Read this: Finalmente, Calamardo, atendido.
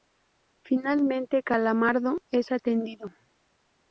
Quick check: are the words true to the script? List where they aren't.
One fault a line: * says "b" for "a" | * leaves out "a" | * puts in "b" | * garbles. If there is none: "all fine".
* puts in "es"